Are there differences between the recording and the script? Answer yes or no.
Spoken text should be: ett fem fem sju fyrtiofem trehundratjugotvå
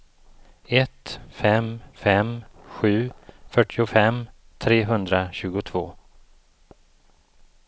no